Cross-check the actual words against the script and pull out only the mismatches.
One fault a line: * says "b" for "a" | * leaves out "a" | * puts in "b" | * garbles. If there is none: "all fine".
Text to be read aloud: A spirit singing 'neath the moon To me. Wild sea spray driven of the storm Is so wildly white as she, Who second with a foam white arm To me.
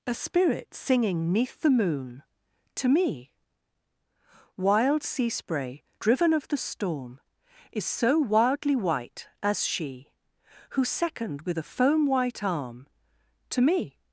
all fine